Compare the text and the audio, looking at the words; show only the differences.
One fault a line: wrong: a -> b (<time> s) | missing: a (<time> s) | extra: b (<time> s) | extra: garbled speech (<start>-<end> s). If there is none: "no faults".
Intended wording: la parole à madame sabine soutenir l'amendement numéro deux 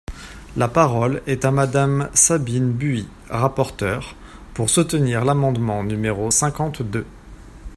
extra: est (1.3 s)
extra: buis rapporteure pour (2.7 s)
extra: cinquante (6.3 s)